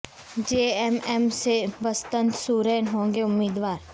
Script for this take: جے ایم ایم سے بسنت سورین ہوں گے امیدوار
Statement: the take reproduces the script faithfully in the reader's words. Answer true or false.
true